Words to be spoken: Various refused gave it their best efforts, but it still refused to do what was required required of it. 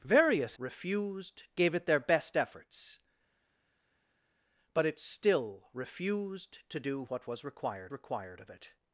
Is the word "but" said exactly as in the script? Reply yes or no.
yes